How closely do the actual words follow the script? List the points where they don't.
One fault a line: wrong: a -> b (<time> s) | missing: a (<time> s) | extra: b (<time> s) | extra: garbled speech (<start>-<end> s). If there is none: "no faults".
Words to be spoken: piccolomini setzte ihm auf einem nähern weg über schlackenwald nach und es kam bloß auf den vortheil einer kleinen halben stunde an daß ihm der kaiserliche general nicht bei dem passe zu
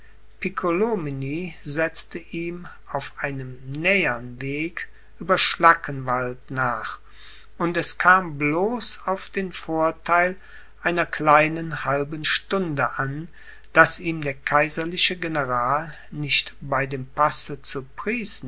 no faults